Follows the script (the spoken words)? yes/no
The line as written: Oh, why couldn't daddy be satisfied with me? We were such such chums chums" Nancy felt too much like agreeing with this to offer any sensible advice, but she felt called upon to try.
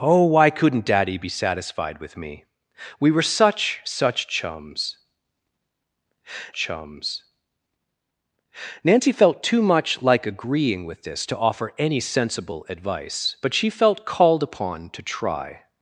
yes